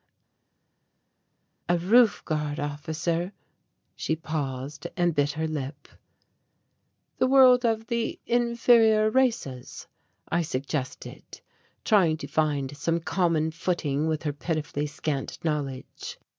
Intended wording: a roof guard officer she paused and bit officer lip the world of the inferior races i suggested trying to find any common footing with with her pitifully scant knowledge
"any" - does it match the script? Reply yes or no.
no